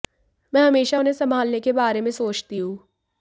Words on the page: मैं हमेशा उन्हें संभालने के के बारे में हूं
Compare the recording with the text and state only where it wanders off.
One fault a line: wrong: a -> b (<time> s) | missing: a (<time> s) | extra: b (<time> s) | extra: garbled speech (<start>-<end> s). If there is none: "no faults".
missing: के (1.7 s)
extra: सोचती (2.1 s)